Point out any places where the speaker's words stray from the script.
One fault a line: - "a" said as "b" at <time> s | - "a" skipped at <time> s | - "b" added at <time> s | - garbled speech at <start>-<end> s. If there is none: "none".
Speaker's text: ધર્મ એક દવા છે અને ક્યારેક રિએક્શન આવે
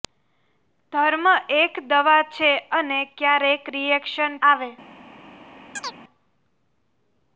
none